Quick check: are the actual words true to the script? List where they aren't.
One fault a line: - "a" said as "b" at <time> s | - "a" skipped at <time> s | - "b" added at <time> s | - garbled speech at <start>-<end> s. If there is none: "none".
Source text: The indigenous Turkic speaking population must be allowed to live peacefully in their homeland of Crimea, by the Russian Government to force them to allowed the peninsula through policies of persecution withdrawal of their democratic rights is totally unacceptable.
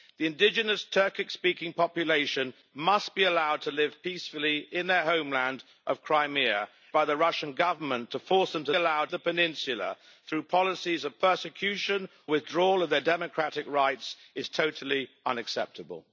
none